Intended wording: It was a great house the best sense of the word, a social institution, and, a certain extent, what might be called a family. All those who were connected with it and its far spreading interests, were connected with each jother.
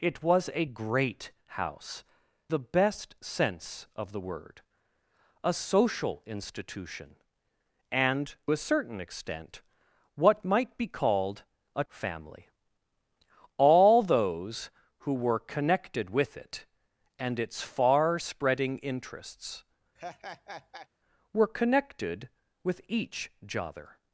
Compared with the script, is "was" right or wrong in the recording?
right